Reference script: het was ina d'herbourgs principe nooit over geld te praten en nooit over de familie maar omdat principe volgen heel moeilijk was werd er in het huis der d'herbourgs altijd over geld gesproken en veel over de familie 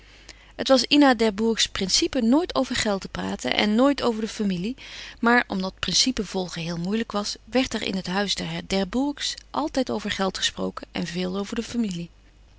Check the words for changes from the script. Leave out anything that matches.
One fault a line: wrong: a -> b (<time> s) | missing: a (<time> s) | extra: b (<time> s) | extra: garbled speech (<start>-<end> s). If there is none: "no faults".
no faults